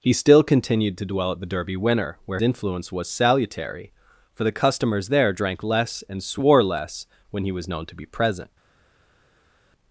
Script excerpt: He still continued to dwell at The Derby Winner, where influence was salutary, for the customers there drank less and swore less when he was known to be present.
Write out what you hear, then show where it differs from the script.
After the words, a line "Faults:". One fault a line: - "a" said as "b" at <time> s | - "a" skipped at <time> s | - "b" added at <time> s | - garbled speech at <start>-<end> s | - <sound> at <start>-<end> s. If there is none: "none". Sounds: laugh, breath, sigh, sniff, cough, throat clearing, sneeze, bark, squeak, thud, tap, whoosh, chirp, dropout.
He still continued to dwell at The Derby Winner, where influence was salutary, for the customers there drank less and swore less when he was known to be present.
Faults:
none